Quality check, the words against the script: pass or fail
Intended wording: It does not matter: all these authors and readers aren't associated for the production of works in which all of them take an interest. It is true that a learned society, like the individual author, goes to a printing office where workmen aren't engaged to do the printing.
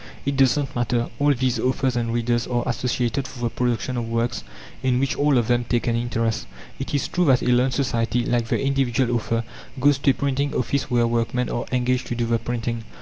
fail